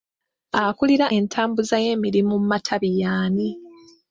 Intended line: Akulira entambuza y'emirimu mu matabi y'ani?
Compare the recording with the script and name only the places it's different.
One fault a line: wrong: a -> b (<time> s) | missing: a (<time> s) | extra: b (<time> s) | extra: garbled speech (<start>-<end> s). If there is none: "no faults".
no faults